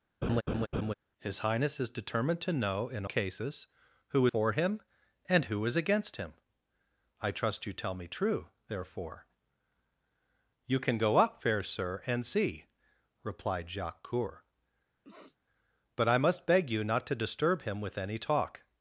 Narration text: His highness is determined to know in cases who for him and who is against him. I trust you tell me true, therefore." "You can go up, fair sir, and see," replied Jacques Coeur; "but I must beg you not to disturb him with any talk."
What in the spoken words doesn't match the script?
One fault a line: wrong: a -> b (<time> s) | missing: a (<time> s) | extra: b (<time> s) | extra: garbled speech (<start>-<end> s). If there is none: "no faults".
no faults